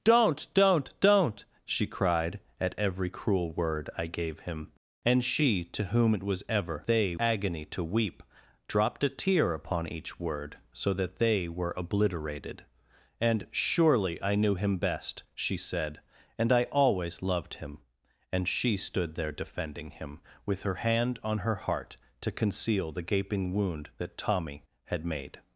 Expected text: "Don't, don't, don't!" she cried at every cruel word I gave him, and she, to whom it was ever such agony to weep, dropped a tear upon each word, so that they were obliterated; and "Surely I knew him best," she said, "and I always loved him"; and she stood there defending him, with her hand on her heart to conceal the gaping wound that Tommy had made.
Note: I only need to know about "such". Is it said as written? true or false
false